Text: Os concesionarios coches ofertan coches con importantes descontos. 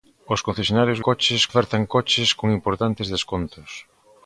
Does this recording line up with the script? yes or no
yes